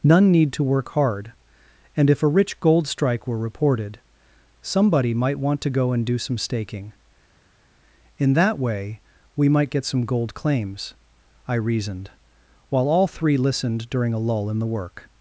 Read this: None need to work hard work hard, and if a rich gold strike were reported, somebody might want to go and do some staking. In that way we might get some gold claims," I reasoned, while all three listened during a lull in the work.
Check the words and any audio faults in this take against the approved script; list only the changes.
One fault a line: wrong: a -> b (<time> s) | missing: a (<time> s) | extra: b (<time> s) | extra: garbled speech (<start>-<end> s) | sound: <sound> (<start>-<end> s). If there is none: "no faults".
missing: work hard (1.3 s)